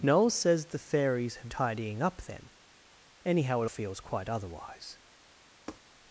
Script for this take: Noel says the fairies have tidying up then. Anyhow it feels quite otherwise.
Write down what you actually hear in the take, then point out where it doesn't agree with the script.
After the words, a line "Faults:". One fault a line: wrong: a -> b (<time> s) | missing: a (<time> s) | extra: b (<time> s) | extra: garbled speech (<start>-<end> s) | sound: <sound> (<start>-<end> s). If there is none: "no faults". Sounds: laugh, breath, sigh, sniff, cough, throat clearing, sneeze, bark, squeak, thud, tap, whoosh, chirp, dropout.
Noel says the fairies have tidying up then. Anyhow it feels quite otherwise.
Faults:
sound: tap (5.7-5.8 s)